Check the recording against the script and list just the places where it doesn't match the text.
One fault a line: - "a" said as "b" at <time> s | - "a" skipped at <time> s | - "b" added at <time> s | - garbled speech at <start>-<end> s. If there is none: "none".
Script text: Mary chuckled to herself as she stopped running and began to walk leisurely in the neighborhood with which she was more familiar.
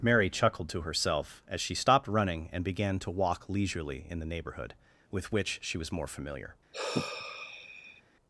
none